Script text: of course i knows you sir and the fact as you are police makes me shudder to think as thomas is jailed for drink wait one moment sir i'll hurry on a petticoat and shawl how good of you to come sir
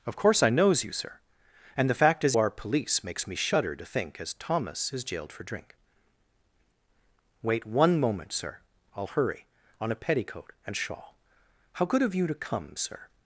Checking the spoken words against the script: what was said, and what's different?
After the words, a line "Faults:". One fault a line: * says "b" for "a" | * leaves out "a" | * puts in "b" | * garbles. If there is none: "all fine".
of course i knows you sir and the fact as are police makes me shudder to think as thomas is jailed for drink wait one moment sir i'll hurry on a petticoat and shawl how good of you to come sir
Faults:
* leaves out "you"